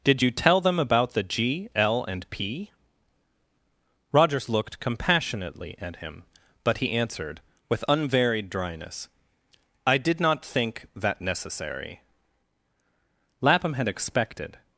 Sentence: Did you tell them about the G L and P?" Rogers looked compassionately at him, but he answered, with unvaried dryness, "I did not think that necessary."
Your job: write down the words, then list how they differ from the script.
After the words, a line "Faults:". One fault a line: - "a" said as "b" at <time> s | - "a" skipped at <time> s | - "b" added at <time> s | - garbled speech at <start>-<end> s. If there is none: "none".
Did you tell them about the G L and P?" Rogers looked compassionately at him, but he answered, with unvaried dryness, "I did not think that necessary." Lapham had expected
Faults:
- "Lapham had expected" added at 13.4 s